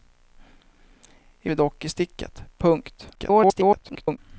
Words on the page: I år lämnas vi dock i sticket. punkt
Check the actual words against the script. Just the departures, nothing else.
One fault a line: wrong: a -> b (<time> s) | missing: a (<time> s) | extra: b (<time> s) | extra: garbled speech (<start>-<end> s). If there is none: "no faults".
missing: år lämnas (1.5 s)
extra: garbled speech (3.1-4.2 s)